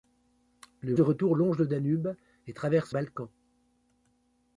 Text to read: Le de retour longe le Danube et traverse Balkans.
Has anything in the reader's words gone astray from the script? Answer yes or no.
no